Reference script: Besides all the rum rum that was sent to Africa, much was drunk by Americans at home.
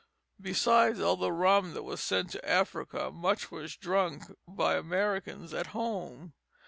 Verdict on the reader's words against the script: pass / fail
fail